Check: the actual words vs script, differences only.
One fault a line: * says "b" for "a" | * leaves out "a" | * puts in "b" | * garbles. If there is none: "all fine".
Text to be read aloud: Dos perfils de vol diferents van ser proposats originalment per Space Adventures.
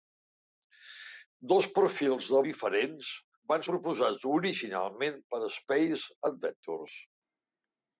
* leaves out "vol"
* leaves out "ser"